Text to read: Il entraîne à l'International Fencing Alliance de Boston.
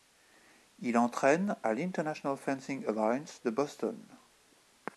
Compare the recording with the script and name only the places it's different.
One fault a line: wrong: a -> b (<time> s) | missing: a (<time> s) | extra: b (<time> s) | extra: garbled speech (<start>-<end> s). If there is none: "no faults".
no faults